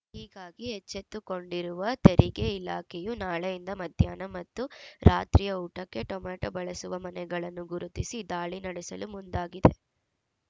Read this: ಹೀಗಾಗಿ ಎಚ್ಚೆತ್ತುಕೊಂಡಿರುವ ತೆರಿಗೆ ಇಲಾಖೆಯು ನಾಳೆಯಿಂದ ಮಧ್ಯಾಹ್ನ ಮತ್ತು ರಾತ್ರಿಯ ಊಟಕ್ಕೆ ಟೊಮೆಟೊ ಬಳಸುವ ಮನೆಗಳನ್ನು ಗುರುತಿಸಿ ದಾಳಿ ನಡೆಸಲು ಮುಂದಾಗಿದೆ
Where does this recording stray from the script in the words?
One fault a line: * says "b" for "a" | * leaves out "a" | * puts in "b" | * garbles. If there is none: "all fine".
all fine